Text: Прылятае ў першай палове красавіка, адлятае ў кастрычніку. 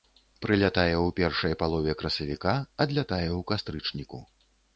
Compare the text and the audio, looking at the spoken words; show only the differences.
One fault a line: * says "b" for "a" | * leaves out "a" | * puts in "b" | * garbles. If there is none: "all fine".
all fine